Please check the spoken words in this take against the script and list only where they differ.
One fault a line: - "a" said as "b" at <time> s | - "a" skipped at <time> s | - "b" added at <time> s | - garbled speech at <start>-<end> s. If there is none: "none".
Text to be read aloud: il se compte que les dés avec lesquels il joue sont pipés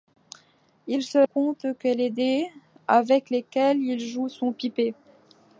none